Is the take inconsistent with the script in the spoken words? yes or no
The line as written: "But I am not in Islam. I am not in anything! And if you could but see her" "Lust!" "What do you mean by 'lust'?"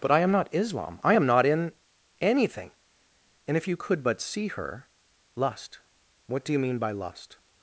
yes